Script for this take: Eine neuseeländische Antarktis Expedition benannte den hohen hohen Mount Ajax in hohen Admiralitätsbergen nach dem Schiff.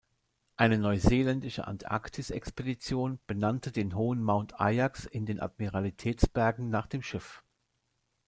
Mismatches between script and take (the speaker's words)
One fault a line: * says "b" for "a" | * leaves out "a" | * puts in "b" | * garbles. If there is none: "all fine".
* leaves out "hohen"
* says "den" for "hohen"